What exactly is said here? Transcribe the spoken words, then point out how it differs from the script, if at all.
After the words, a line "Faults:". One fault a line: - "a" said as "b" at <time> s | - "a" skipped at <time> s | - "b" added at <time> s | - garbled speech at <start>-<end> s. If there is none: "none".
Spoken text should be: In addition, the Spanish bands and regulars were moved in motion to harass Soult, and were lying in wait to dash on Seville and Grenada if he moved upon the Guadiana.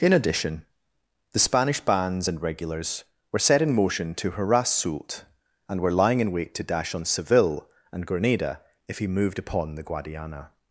In addition, the Spanish bands and regulars were set in motion to harass Soult, and were lying in wait to dash on Seville and Grenada if he moved upon the Guadiana.
Faults:
- "moved" said as "set" at 3.5 s